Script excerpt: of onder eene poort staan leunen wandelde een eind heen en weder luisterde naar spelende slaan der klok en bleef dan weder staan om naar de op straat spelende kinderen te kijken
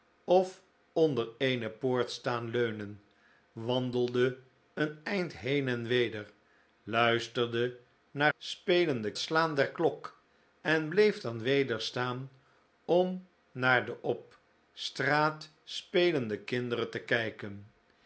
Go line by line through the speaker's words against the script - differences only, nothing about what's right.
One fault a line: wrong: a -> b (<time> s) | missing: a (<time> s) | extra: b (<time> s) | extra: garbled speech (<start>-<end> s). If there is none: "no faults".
no faults